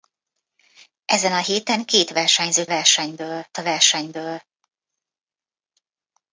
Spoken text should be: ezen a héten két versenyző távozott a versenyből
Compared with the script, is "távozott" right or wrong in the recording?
wrong